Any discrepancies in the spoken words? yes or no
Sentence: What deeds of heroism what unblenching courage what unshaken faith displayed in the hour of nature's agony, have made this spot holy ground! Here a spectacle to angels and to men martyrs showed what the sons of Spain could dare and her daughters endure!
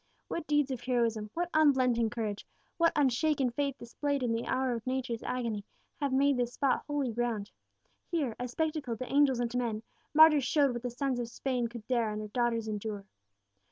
no